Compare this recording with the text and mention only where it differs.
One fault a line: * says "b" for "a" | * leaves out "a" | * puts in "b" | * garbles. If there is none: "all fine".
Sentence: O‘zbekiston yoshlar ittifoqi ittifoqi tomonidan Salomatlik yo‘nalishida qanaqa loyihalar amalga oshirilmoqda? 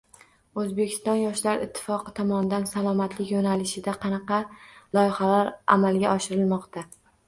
* leaves out "ittifoqi"